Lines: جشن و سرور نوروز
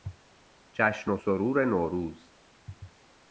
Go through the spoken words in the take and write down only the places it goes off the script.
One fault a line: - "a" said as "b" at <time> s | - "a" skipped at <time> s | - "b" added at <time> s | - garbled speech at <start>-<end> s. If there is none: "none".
none